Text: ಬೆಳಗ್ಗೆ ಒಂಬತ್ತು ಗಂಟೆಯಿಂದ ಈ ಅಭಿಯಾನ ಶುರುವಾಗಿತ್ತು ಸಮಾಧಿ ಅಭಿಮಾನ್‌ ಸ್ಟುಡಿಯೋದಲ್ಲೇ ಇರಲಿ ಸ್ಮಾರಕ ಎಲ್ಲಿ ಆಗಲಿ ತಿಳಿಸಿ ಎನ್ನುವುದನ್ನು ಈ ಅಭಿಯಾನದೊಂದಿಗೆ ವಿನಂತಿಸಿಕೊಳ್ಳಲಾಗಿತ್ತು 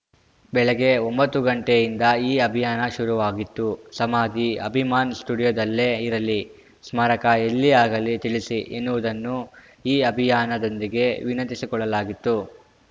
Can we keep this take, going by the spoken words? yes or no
yes